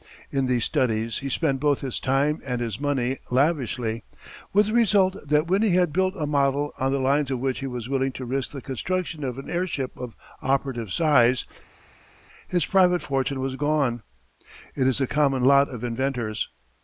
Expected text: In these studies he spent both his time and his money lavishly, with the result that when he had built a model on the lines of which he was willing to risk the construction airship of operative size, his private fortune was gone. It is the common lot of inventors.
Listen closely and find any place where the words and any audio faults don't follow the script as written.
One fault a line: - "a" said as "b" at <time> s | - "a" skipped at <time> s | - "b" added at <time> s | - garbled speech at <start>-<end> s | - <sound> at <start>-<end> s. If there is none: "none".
- "of an" added at 9.2 s